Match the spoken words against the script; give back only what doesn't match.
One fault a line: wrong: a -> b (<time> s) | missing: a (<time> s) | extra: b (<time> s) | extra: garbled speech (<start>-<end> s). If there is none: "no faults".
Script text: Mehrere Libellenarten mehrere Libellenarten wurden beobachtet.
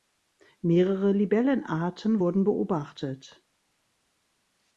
missing: mehrere Libellenarten (2.2 s)